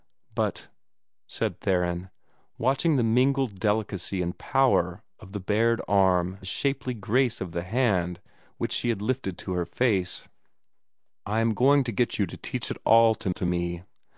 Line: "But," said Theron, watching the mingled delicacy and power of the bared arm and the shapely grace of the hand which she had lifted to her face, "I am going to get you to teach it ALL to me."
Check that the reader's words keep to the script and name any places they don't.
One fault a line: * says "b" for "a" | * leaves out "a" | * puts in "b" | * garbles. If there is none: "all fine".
* leaves out "and"
* puts in "to"